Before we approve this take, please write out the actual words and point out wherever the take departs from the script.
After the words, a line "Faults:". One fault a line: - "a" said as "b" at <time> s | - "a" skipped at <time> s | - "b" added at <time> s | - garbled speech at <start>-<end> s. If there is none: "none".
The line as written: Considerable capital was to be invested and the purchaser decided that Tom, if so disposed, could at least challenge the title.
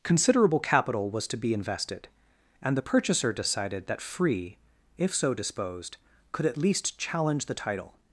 Considerable capital was to be invested and the purchaser decided that Free, if so disposed, could at least challenge the title.
Faults:
- "Tom" said as "Free" at 4.0 s